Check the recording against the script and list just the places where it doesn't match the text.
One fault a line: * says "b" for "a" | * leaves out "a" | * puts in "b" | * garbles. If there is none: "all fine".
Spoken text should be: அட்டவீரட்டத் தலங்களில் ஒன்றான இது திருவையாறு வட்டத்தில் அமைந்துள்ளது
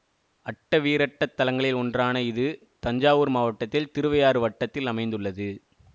* puts in "தஞ்சாவூர் மாவட்டத்தில்"